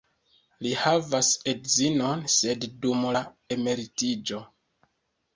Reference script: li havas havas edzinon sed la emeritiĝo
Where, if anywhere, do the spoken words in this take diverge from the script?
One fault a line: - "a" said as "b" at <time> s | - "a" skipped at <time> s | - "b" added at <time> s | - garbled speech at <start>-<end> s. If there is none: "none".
- "havas" skipped at 1.3 s
- "dum" added at 2.9 s